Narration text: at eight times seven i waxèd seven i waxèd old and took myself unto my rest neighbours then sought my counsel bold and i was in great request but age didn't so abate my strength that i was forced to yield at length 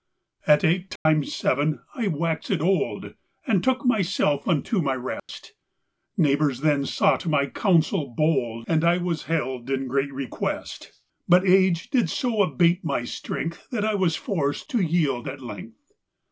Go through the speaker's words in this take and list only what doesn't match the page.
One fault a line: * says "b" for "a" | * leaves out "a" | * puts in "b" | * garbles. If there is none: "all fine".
* leaves out "seven i waxèd"
* puts in "held"
* says "did" for "didn't"